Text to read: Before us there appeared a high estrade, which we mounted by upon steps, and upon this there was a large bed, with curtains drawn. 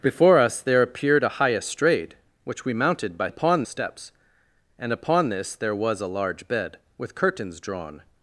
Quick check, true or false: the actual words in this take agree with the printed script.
true